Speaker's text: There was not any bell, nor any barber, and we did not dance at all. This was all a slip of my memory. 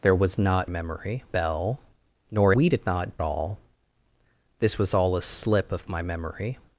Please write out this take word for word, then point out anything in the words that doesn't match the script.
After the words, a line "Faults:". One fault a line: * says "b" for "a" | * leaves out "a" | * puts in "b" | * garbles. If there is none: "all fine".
There was not memory bell, nor we did not all. This was all a slip of my memory.
Faults:
* says "memory" for "any"
* leaves out "any barber and"
* leaves out "dance at"